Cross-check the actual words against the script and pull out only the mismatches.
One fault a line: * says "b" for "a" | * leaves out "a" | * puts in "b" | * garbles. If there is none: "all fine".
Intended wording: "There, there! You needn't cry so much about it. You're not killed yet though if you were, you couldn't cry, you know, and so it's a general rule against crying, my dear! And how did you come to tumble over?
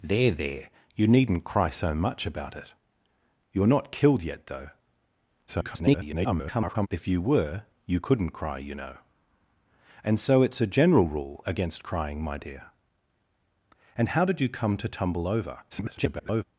* garbles
* garbles